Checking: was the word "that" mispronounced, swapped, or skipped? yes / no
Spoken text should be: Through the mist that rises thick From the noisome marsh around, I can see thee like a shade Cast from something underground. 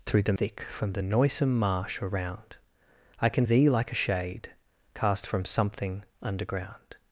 yes